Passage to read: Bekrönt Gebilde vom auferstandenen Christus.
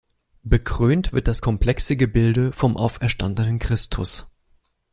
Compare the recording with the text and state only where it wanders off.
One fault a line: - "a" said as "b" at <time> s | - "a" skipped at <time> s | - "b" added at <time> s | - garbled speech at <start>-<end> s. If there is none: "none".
- "wird das komplexe" added at 1.1 s